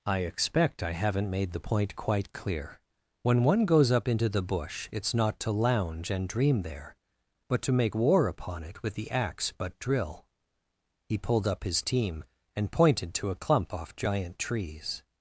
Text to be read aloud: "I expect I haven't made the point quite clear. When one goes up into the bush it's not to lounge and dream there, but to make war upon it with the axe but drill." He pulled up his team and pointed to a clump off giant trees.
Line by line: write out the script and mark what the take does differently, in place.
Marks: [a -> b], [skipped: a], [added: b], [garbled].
"I expect I haven't made the point quite clear. When one goes up into the bush it's not to lounge and dream there, but to make war upon it with the axe but drill." He pulled up his team and pointed to a clump off giant trees.